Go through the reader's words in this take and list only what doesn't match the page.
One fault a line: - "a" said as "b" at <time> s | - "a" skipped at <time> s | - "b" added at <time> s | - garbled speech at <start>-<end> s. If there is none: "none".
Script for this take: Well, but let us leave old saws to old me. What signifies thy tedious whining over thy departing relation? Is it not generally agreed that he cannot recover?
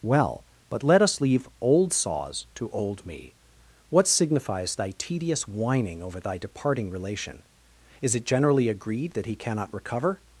- "not" skipped at 8.2 s